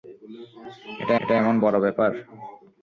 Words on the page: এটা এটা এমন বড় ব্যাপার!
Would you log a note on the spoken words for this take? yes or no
no